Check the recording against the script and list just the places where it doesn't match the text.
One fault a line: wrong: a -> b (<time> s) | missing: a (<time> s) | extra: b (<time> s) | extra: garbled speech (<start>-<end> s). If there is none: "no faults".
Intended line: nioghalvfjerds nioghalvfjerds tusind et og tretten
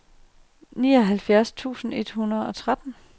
missing: nioghalvfjerds (1.5 s)
extra: hundrede (2.1 s)